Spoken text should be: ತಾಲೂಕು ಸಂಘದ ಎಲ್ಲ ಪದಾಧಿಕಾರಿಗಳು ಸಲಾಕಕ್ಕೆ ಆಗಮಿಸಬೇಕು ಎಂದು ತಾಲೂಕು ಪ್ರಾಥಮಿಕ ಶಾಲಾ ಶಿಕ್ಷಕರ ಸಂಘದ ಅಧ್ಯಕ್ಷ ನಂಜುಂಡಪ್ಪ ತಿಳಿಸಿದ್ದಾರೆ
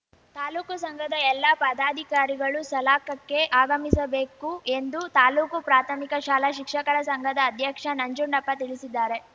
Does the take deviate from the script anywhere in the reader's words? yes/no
no